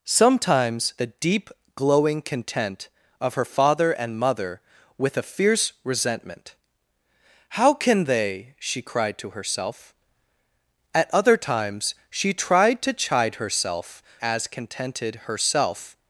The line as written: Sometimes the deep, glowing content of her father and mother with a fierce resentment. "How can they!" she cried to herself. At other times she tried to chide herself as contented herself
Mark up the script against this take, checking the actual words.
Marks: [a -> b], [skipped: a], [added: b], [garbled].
Sometimes the deep, glowing content of her father and mother with a fierce resentment. "How can they!" she cried to herself. At other times she tried to chide herself as contented herself